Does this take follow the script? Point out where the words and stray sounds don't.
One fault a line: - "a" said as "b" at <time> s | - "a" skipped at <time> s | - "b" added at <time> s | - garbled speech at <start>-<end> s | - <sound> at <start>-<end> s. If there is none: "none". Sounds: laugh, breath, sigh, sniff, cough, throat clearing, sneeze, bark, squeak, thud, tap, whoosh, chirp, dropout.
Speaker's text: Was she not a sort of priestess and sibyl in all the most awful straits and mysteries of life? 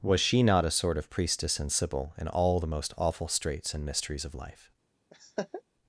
- laugh at 5.1-5.6 s